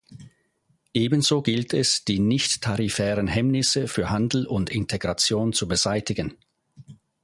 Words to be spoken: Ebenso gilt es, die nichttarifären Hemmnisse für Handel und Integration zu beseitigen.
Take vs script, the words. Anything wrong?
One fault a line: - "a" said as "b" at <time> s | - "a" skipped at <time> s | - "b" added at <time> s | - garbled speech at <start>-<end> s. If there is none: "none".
none